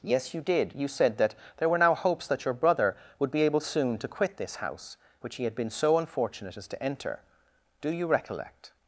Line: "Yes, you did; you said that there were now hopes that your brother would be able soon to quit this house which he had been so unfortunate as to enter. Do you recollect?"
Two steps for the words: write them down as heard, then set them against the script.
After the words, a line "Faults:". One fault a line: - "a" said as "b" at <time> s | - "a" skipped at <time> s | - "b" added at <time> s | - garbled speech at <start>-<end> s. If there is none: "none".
"Yes, you did; you said that there were now hopes that your brother would be able soon to quit this house which he had been so unfortunate as to enter. Do you recollect?"
Faults:
none